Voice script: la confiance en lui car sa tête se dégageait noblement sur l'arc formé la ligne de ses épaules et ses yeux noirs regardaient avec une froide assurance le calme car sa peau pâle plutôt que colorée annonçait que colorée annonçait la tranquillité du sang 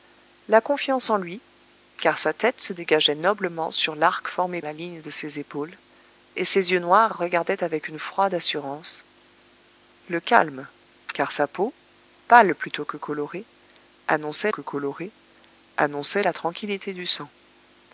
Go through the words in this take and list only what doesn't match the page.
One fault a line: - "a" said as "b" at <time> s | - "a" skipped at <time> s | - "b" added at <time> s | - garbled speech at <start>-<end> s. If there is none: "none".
none